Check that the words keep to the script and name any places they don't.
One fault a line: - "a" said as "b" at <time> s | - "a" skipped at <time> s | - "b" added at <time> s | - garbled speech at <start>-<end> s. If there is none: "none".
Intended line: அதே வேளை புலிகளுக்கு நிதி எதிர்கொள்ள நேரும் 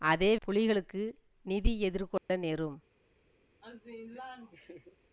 - "வேளை" skipped at 0.4 s